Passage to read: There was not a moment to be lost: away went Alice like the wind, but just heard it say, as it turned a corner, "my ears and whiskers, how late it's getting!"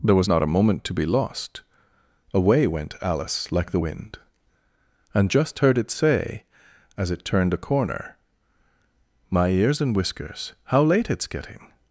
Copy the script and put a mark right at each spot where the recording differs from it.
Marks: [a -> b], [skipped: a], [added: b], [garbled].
There was not a moment to be lost: away went Alice like the wind, [but -> and] just heard it say, as it turned a corner, "my ears and whiskers, how late it's getting!"